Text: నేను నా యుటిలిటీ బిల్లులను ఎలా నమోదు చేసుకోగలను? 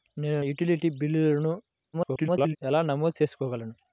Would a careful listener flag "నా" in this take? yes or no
yes